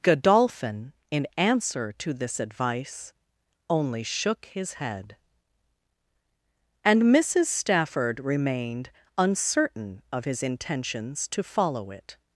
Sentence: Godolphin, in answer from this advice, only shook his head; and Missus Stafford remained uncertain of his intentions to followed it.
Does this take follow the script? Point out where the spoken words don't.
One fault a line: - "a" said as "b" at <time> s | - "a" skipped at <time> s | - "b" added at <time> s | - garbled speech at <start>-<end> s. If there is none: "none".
- "from" said as "to" at 2.0 s
- "followed" said as "follow" at 11.4 s